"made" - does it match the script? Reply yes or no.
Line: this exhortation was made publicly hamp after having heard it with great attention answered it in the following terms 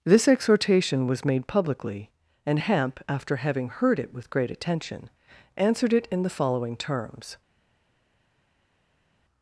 yes